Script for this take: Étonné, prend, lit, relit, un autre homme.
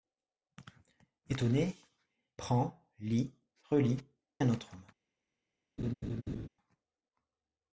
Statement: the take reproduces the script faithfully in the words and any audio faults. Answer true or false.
false